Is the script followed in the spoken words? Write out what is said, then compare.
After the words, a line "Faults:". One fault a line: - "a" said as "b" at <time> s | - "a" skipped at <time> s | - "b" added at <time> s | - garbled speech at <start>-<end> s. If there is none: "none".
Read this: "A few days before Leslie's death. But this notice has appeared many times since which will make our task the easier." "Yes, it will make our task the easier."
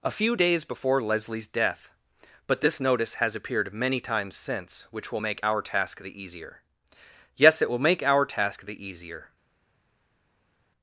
"A few days before Leslie's death. But this notice has appeared many times since which will make our task the easier." "Yes, it will make our task the easier."
Faults:
none